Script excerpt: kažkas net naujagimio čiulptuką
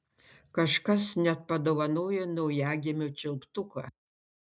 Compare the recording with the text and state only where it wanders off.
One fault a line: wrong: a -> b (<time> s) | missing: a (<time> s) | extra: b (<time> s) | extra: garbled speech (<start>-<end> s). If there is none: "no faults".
extra: padovanojo (1.5 s)